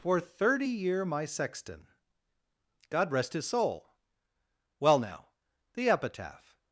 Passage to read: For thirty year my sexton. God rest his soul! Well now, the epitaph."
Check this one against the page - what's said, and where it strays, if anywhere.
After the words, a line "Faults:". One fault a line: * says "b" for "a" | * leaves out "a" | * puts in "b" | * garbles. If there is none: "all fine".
For thirty year my sexton. God rest his soul! Well now, the epitaph."
Faults:
all fine